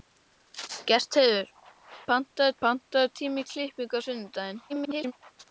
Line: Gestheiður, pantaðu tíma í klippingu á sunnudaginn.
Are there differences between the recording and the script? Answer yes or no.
yes